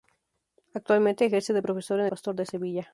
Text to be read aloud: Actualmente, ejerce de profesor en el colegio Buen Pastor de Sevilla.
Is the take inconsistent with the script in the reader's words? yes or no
yes